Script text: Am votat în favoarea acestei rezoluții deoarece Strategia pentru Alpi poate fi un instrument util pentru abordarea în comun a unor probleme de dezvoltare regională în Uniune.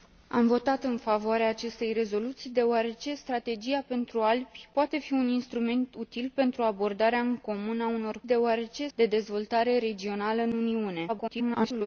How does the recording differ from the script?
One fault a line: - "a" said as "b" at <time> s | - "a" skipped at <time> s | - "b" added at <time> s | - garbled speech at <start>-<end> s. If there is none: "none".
- "probleme" said as "deoarece" at 8.2 s
- garbled speech at 11.1-11.9 s